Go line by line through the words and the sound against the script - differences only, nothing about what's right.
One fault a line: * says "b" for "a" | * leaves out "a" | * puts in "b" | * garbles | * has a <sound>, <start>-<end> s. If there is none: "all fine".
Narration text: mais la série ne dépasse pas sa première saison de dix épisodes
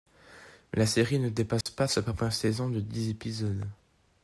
* has a dropout, 1.6-1.7 s